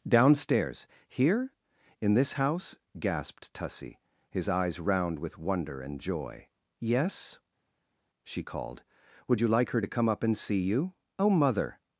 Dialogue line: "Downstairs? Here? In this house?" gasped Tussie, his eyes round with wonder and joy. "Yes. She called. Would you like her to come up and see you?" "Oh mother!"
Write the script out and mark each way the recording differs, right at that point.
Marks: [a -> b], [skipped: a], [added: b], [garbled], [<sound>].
"Downstairs? Here? In this house?" gasped Tussie, his eyes round with wonder and joy. "Yes. She called. Would you like her to come up and see you?" "Oh mother!"